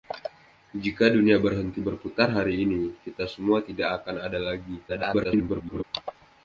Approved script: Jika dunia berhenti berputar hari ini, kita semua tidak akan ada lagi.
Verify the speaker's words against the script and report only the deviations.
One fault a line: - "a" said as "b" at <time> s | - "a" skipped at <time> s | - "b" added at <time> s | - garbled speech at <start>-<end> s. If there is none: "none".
- garbled speech at 4.9-5.8 s